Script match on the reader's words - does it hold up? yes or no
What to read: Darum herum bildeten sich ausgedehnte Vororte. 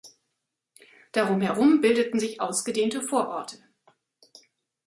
yes